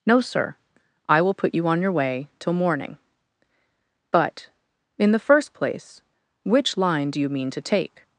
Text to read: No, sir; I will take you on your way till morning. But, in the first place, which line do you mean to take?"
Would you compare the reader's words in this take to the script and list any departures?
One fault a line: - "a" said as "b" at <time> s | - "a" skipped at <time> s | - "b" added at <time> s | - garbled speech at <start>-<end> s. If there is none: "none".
- "take" said as "put" at 1.3 s